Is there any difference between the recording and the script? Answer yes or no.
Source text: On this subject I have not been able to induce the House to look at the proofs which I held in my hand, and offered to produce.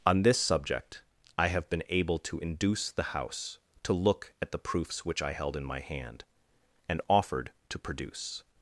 yes